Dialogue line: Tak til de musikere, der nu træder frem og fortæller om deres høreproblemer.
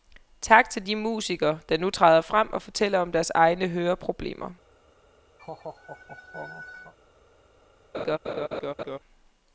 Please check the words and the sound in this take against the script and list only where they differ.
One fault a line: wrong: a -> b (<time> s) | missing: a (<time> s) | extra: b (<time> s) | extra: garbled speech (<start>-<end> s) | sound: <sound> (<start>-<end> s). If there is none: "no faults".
extra: egne (3.3 s)
sound: laugh (5.4-6.9 s)
sound: laugh (7.9-9.0 s)